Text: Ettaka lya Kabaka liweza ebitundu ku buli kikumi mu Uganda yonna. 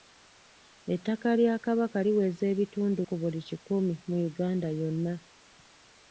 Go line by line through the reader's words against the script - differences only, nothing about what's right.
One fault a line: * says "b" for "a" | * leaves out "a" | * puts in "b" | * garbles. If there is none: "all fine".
all fine